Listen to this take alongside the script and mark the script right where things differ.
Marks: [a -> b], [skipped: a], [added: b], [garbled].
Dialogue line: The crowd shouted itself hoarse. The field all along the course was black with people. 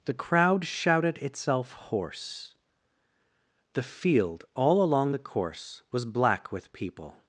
The crowd shouted itself hoarse. The field all along the course was black with people.